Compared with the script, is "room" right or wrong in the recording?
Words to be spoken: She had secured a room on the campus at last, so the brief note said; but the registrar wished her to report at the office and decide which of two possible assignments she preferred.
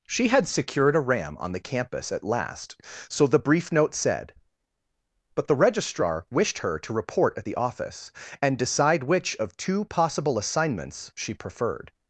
wrong